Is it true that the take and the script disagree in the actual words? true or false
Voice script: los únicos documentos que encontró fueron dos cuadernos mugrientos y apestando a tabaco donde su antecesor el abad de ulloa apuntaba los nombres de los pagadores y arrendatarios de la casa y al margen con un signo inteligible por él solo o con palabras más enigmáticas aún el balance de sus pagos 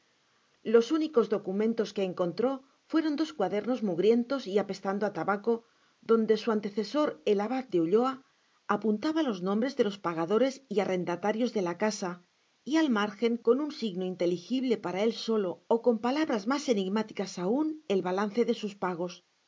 true